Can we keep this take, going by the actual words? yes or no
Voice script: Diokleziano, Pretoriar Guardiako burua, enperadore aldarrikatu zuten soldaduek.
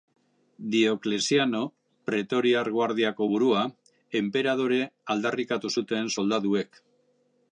yes